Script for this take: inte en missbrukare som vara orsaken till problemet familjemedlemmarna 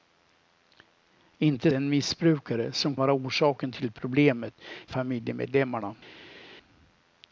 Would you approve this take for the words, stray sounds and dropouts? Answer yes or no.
yes